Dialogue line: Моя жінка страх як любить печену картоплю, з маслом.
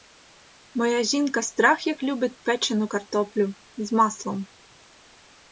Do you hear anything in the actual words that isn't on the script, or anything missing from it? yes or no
no